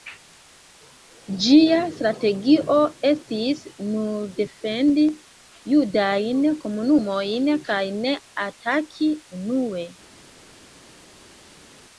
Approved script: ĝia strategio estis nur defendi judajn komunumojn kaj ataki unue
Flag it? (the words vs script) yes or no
yes